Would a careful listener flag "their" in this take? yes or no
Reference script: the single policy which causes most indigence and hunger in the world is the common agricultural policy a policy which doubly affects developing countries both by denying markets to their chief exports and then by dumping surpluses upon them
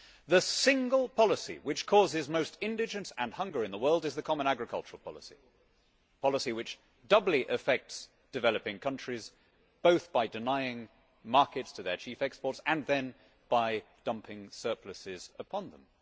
no